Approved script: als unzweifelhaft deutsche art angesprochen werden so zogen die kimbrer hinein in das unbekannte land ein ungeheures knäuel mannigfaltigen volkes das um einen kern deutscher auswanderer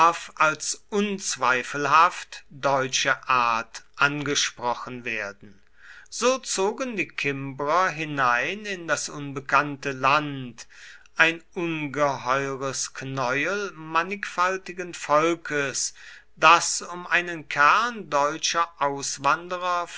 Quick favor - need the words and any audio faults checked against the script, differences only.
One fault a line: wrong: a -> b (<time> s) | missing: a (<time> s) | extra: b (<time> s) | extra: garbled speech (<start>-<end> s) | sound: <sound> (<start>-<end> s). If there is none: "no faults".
no faults